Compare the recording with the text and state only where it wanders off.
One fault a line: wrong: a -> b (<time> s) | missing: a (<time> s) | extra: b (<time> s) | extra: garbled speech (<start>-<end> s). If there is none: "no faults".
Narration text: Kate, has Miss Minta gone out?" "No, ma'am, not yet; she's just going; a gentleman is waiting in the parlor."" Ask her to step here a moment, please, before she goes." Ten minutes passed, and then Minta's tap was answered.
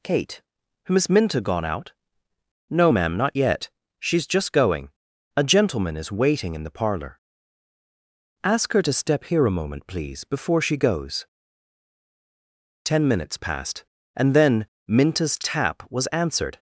no faults